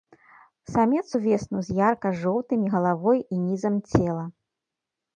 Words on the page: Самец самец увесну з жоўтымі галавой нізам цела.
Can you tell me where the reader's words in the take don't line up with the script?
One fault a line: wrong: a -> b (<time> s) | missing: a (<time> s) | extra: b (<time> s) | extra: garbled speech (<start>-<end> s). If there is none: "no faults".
missing: самец (1.0 s)
extra: ярка (1.9 s)
extra: і (3.3 s)